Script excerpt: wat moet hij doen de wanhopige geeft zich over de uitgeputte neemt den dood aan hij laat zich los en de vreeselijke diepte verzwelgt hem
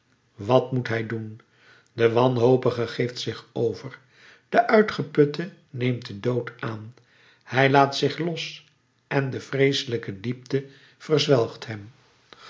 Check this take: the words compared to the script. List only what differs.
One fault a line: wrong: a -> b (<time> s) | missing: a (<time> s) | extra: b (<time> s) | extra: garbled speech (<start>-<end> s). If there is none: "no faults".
no faults